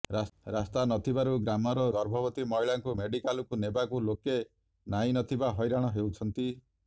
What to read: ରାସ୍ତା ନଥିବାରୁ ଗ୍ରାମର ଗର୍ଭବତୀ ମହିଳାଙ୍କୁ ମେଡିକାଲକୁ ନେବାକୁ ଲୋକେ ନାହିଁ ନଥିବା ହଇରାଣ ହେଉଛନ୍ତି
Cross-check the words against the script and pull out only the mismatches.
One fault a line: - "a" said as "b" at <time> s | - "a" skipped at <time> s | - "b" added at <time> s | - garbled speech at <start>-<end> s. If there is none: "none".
none